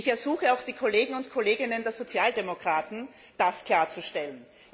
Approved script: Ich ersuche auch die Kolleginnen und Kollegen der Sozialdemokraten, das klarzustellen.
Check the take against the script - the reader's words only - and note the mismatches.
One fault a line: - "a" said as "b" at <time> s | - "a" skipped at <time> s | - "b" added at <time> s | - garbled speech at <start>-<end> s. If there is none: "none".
none